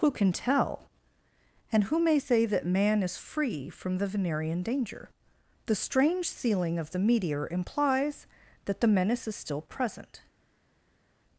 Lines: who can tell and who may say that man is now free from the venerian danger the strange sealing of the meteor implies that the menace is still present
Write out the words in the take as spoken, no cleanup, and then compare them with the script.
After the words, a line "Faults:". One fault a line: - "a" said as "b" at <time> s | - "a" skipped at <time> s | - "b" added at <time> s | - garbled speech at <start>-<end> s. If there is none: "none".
who can tell and who may say that man is free from the venerian danger the strange sealing of the meteor implies that the menace is still present
Faults:
- "now" skipped at 3.2 s